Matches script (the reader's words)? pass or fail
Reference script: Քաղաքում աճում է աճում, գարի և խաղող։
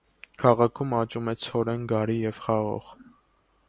fail